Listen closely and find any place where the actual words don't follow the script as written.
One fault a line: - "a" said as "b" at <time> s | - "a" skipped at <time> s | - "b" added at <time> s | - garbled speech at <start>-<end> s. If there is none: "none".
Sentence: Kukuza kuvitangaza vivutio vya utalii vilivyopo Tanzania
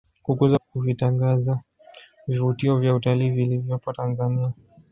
none